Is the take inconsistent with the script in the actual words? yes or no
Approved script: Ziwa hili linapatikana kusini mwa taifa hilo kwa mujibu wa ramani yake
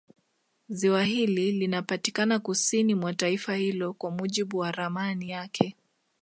no